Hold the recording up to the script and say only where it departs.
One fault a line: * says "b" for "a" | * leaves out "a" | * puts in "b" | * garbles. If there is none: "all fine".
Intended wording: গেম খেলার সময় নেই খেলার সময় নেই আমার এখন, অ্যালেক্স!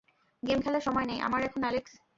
* leaves out "খেলার সময় নেই"